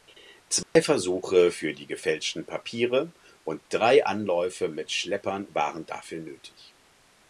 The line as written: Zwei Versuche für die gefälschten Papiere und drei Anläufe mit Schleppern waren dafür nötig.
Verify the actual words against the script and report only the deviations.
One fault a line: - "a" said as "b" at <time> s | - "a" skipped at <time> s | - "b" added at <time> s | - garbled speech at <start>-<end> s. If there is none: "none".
none